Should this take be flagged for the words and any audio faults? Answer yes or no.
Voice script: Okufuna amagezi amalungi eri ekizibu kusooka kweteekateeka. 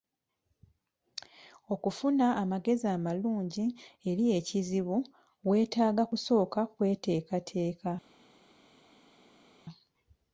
yes